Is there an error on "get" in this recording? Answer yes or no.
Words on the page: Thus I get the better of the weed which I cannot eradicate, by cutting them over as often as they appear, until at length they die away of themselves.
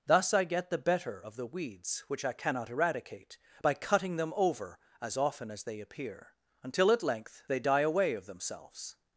no